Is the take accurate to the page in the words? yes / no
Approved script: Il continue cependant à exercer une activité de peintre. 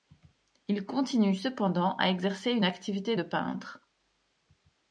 yes